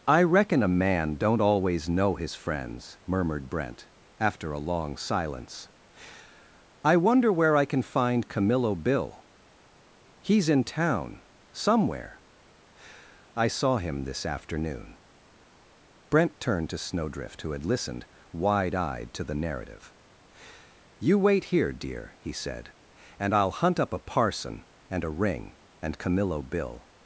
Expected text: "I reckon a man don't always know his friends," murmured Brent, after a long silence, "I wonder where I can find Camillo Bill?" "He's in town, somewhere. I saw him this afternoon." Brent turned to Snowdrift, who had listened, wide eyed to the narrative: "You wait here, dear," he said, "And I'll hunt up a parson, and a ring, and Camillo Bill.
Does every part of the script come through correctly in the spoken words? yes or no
yes